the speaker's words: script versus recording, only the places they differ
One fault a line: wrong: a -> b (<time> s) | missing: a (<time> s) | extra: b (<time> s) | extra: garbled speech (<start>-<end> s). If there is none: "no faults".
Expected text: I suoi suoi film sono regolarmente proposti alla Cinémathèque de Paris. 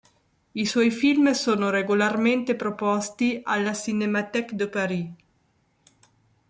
missing: suoi (0.9 s)